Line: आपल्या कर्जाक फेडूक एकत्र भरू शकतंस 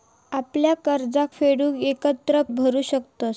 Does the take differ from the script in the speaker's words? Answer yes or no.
no